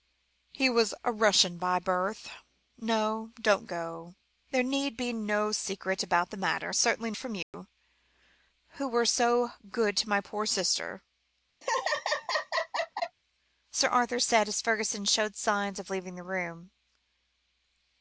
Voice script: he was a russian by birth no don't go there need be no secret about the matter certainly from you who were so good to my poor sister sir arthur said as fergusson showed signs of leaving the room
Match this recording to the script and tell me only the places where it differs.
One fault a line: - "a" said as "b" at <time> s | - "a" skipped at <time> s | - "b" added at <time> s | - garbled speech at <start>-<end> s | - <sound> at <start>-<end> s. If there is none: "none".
- dropout at 7.4-7.5 s
- laugh at 11.6-13.2 s